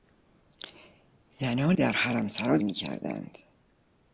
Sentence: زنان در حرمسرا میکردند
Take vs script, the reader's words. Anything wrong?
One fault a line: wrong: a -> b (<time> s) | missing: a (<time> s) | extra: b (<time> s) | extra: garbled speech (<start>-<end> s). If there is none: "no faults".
no faults